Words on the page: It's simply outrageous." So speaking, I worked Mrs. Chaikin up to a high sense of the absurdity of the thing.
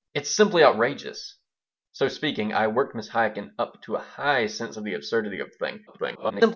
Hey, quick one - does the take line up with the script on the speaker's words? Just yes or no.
no